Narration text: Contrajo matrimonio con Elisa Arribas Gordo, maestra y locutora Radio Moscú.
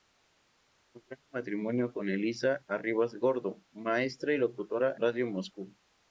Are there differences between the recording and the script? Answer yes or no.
no